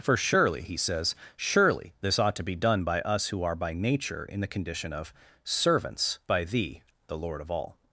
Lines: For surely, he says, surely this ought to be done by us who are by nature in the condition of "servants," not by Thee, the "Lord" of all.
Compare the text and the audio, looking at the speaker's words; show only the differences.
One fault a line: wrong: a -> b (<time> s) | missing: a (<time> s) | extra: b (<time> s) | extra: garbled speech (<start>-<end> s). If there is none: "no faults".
missing: not (6.2 s)